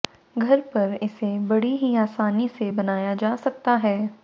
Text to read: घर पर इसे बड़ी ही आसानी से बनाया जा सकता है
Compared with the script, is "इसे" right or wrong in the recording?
right